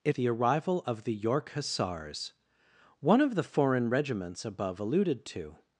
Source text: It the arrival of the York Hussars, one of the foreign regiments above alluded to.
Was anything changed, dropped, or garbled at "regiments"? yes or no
no